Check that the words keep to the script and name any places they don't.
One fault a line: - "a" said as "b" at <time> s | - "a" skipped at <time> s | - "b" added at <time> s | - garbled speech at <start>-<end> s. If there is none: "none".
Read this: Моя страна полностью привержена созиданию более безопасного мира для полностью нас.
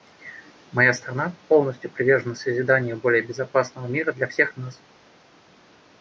- "полностью" said as "всех" at 4.3 s